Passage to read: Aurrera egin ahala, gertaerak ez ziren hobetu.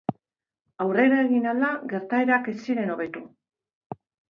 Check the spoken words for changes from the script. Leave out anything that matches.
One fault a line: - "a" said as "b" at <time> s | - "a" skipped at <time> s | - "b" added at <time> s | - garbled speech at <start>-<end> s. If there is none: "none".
none